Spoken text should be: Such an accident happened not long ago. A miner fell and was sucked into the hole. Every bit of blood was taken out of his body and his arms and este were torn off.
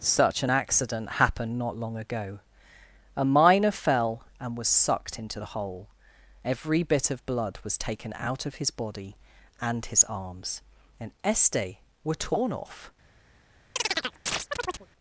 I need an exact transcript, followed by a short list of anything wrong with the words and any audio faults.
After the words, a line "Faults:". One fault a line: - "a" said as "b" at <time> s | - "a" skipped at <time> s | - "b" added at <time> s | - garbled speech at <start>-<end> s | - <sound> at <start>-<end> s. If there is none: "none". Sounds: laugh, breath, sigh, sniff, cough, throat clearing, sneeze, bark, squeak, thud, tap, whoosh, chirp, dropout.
Such an accident happened not long ago. A miner fell and was sucked into the hole. Every bit of blood was taken out of his body and his arms and este were torn off.
Faults:
- chirp at 13.8-14.9 s